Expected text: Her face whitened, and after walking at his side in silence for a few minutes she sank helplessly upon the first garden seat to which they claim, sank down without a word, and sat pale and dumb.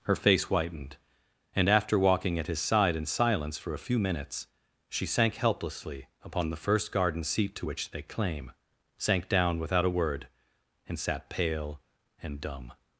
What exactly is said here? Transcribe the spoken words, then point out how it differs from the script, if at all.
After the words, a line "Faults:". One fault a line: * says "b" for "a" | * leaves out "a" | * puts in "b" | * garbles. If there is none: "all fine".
Her face whitened, and after walking at his side in silence for a few minutes she sank helplessly upon the first garden seat to which they claim, sank down without a word, and sat pale and dumb.
Faults:
all fine